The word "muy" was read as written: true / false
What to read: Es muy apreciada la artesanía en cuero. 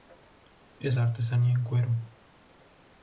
false